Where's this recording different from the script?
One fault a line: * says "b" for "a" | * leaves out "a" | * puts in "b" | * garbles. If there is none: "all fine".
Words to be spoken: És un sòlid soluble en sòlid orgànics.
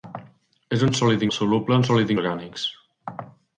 all fine